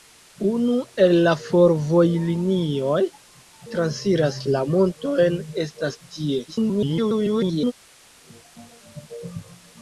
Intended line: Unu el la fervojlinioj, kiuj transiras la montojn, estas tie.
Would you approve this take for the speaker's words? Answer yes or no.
no